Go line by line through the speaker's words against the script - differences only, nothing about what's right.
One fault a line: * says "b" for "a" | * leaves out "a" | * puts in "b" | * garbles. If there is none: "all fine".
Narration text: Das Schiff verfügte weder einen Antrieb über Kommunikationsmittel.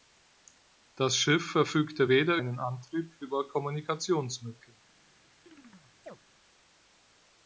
all fine